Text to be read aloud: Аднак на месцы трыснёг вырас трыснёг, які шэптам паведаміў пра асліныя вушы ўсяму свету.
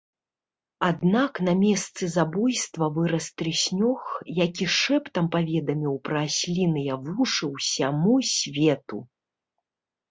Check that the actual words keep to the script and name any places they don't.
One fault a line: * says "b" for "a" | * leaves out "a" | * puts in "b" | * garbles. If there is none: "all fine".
* says "забойства" for "трыснёг"